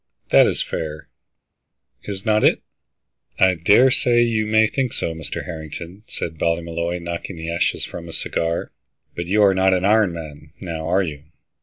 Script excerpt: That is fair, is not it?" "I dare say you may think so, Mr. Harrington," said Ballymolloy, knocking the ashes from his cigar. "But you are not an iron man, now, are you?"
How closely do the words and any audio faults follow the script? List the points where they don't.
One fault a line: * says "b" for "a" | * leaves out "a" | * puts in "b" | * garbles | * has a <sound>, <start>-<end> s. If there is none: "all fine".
all fine